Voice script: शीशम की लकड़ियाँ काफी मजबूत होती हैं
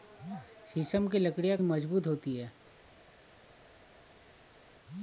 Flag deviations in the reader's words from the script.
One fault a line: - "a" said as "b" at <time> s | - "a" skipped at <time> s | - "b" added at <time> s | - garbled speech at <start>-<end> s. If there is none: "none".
- "काफी" skipped at 1.6 s